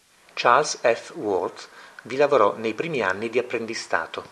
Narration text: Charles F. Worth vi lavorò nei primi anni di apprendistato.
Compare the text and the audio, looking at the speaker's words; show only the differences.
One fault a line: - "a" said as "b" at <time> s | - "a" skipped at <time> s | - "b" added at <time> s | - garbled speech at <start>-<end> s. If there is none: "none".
none